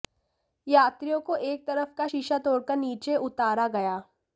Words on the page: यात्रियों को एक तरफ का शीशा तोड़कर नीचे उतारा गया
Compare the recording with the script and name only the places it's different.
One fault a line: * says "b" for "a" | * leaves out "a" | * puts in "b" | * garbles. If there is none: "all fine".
all fine